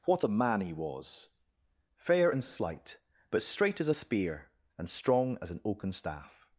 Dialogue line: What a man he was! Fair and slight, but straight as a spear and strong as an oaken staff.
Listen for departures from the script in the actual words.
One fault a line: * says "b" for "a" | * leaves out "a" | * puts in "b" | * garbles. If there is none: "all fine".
all fine